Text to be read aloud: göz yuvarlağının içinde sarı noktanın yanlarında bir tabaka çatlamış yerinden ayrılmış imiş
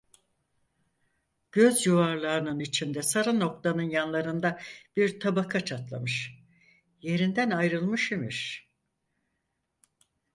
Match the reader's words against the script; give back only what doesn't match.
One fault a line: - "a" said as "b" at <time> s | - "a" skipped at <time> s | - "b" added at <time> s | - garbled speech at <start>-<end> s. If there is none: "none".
none